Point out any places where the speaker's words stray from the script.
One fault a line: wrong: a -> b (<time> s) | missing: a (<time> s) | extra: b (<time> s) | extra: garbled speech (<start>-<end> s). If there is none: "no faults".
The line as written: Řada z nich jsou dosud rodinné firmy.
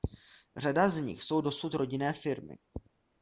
no faults